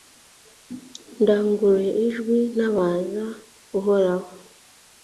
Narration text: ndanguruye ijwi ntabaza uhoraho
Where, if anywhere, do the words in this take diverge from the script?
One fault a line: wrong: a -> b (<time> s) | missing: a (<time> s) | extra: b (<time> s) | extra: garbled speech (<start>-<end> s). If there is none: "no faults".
no faults